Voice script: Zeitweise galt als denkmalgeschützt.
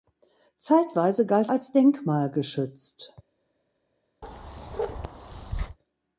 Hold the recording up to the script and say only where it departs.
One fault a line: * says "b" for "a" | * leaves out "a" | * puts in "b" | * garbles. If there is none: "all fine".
all fine